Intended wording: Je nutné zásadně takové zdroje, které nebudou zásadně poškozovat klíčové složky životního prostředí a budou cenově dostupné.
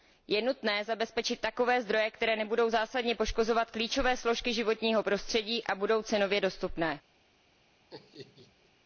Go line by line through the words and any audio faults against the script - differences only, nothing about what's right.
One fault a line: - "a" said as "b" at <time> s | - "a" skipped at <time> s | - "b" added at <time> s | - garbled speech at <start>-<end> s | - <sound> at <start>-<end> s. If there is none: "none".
- "zásadně" said as "zabezpečit" at 0.8 s
- laugh at 7.9-8.7 s